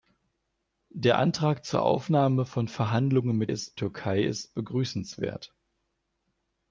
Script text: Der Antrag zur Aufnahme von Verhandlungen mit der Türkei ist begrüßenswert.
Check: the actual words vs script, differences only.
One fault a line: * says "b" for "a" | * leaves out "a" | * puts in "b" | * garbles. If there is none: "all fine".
* says "ist" for "der"